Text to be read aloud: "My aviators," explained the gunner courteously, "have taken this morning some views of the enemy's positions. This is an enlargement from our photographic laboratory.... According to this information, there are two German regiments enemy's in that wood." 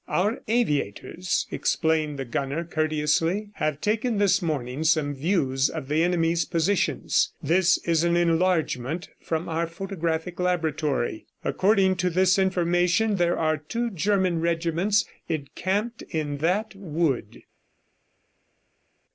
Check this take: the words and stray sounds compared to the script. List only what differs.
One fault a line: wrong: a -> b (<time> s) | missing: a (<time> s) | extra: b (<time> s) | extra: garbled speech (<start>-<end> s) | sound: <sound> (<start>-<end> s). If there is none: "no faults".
wrong: My -> Our (0.1 s)
wrong: enemy's -> encamped (15.3 s)